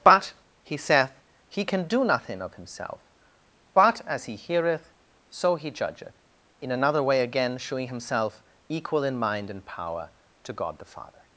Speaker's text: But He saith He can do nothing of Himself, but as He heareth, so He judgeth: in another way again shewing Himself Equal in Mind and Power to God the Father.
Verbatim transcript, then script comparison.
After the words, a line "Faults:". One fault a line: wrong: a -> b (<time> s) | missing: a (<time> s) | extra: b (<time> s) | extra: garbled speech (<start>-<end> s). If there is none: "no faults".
But He saith He can do nothing of Himself, but as He heareth, so He judgeth: in another way again shewing Himself Equal in Mind and Power to God the Father.
Faults:
no faults